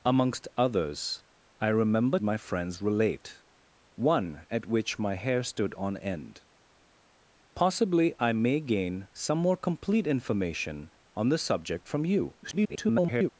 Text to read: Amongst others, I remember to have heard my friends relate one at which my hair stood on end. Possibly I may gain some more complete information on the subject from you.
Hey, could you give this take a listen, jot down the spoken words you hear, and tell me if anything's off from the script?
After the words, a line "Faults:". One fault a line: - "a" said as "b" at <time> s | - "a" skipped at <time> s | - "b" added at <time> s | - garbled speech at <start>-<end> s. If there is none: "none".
Amongst others, I remember my friends relate one at which my hair stood on end. Possibly I may gain some more complete information on the subject from you. [garbled]
Faults:
- "to have heard" skipped at 2.2 s
- garbled speech at 12.4-13.3 s